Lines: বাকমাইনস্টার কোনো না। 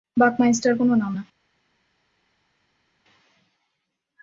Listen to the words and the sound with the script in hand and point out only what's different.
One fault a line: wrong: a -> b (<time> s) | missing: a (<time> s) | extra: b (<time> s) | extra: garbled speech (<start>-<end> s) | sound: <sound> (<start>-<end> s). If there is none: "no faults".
extra: নাম (1.0 s)